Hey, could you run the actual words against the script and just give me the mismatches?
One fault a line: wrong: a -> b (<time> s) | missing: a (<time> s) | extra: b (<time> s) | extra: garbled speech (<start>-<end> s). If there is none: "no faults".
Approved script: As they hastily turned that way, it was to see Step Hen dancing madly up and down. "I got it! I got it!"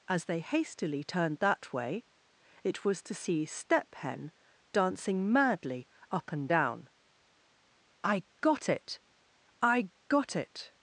no faults